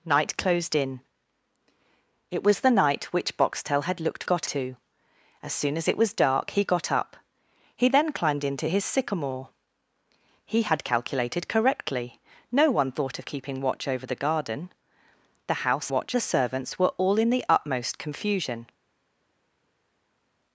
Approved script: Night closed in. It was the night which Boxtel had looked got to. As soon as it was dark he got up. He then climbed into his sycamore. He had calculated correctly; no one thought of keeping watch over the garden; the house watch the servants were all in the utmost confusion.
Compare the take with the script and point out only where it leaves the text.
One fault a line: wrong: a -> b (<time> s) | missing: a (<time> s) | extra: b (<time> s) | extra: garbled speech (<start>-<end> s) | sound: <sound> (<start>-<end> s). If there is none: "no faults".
no faults